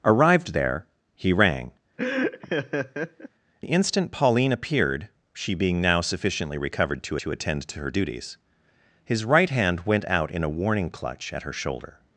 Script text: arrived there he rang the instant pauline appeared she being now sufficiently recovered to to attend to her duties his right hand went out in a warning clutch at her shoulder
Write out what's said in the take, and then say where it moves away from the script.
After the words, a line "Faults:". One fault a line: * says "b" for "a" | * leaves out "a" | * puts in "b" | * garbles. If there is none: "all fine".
arrived there he rang the instant pauline appeared she being now sufficiently recovered to to attend to her duties his right hand went out in a warning clutch at her shoulder
Faults:
all fine